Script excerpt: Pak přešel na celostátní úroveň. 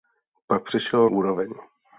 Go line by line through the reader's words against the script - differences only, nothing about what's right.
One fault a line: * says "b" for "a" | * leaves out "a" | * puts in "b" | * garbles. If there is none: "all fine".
* leaves out "na celostátní"